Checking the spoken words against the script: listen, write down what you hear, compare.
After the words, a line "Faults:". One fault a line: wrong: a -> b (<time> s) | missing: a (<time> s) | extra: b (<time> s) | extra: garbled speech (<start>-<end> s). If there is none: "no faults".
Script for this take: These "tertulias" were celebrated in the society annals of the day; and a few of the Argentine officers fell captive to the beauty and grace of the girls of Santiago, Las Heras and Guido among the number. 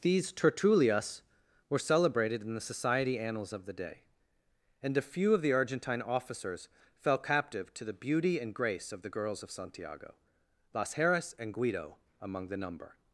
These "tertulias" were celebrated in the society annals of the day; and a few of the Argentine officers fell captive to the beauty and grace of the girls of Santiago, Las Heras and Guido among the number.
Faults:
no faults